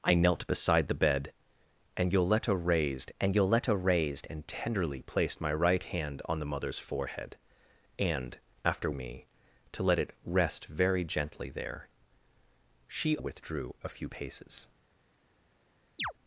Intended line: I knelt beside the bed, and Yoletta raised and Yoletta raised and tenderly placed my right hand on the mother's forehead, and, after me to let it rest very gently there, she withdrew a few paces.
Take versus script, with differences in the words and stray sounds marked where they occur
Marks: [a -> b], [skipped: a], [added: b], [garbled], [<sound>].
I knelt beside the bed, and Yoletta raised and Yoletta raised and tenderly placed my right hand on the mother's forehead, and, after me to let it rest very gently there, she withdrew a few paces. [chirp]